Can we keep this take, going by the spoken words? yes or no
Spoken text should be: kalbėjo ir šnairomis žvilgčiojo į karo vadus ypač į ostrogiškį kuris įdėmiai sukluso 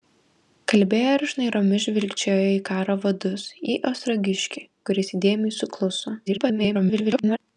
no